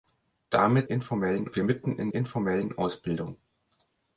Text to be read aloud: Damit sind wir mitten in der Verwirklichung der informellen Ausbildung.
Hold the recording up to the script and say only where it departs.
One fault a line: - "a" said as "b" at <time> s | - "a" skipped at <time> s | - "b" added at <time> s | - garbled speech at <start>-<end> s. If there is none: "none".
- "sind" said as "informellen" at 0.9 s
- "der Verwirklichung der" skipped at 2.1 s